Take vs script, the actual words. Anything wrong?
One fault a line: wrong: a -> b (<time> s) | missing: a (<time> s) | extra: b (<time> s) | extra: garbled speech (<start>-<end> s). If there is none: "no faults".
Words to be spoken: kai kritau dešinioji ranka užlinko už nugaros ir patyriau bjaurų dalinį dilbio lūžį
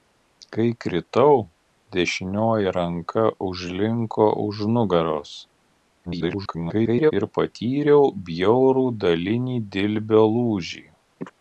extra: garbled speech (6.1-7.1 s)